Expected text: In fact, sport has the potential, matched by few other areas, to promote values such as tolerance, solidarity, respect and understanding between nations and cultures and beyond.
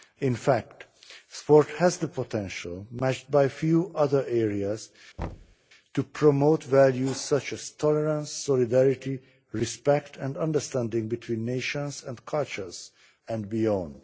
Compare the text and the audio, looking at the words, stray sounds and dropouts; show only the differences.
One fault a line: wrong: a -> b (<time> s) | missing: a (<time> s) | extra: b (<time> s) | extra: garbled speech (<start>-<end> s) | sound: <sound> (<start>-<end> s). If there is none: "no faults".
sound: thud (5.2-5.6 s)